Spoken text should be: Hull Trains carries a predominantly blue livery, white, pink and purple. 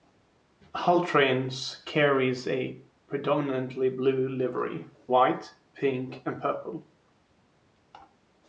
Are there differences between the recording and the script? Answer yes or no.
no